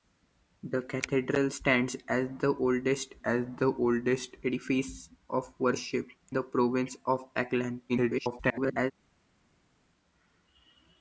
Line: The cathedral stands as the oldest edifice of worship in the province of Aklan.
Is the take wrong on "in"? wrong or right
wrong